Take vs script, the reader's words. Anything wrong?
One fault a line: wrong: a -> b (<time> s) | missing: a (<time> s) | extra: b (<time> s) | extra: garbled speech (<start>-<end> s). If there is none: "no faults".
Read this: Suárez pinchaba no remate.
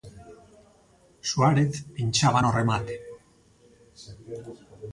no faults